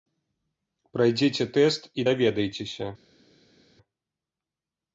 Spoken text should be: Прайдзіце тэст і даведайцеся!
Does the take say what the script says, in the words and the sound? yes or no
yes